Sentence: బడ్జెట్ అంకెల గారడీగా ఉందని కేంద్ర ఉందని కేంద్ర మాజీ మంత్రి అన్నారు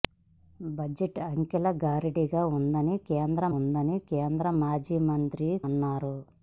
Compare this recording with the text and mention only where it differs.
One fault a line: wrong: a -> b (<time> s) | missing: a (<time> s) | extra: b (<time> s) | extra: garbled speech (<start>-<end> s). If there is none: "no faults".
no faults